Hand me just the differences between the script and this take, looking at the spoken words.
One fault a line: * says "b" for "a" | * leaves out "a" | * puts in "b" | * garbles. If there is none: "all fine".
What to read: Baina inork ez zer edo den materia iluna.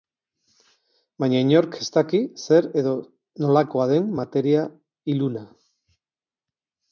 * puts in "daki"
* puts in "nolakoa"